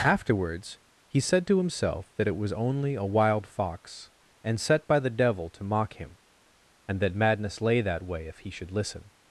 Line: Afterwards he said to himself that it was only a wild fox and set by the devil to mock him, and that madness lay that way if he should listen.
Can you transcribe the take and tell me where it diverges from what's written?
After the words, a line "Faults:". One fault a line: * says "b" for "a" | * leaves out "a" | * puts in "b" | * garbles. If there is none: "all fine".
Afterwards he said to himself that it was only a wild fox and set by the devil to mock him, and that madness lay that way if he should listen.
Faults:
all fine